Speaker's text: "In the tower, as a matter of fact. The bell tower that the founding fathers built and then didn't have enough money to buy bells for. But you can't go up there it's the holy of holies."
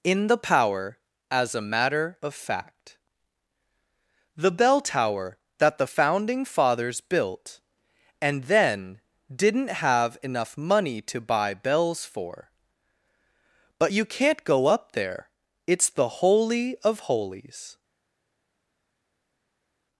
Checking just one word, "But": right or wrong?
right